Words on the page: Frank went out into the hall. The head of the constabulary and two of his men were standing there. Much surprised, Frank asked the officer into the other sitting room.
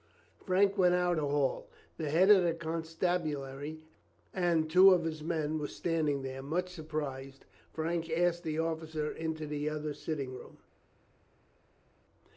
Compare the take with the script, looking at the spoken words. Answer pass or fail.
fail